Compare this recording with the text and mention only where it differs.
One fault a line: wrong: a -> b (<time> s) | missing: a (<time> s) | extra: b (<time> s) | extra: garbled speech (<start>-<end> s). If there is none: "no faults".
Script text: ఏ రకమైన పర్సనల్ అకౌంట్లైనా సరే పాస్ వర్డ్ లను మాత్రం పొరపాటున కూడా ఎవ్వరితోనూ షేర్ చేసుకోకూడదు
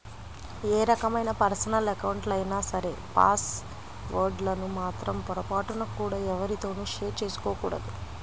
no faults